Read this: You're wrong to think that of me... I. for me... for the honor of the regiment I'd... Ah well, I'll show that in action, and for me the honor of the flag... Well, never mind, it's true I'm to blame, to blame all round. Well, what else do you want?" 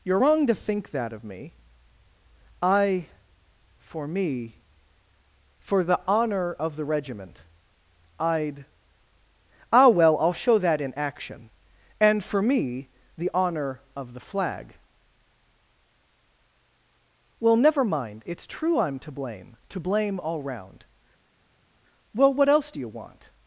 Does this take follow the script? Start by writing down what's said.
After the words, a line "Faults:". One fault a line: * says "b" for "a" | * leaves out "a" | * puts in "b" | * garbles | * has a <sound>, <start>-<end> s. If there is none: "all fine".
You're wrong to think that of me... I. for me... for the honor of the regiment I'd... Ah well, I'll show that in action, and for me the honor of the flag... Well, never mind, it's true I'm to blame, to blame all round. Well, what else do you want?"
Faults:
all fine